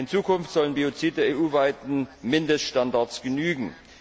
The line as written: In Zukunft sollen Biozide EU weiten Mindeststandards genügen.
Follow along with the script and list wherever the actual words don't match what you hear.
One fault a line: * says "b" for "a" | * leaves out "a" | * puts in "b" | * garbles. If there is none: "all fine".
all fine